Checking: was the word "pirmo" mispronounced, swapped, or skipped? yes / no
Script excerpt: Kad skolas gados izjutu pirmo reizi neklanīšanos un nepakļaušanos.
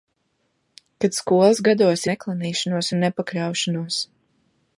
yes